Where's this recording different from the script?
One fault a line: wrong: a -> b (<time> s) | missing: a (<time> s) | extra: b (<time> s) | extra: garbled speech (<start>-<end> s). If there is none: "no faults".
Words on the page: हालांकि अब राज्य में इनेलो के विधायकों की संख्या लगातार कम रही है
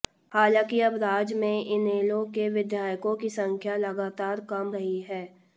no faults